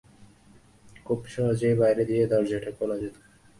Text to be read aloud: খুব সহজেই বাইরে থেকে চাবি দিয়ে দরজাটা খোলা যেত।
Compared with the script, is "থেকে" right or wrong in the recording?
wrong